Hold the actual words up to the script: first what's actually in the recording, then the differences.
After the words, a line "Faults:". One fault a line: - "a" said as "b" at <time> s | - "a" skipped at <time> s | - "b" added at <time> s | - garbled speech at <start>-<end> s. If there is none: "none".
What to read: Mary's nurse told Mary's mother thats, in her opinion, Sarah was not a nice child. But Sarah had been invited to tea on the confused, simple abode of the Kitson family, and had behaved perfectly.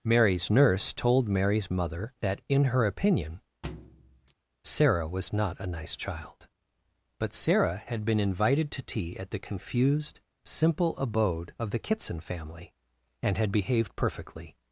Mary's nurse told Mary's mother that, in her opinion, Sarah was not a nice child. But Sarah had been invited to tea at the confused, simple abode of the Kitson family, and had behaved perfectly.
Faults:
- "thats" said as "that" at 2.2 s
- "on" said as "at" at 9.2 s